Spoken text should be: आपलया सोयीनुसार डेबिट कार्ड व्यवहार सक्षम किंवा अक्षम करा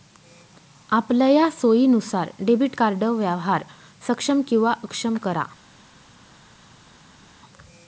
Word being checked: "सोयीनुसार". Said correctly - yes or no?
yes